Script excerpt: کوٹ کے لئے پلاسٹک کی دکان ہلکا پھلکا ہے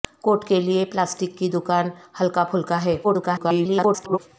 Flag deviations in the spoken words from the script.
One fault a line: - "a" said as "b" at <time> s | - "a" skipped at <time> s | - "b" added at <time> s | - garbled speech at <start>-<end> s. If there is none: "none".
- garbled speech at 3.0-4.2 s